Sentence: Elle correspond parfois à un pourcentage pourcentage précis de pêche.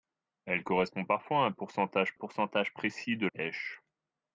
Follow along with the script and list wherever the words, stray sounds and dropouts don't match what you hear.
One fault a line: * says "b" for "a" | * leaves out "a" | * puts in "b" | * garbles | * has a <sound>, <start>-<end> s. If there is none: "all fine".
all fine